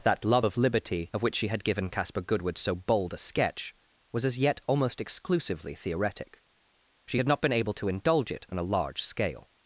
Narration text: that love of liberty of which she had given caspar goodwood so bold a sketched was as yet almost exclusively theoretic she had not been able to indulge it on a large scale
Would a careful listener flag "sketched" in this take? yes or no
yes